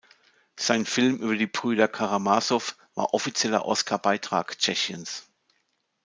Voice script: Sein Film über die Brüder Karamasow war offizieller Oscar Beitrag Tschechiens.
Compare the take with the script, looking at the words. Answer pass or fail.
pass